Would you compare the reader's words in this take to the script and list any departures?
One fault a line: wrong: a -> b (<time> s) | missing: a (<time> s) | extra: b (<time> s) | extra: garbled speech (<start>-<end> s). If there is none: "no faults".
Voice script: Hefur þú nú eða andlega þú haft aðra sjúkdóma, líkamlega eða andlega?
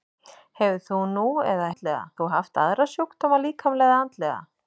no faults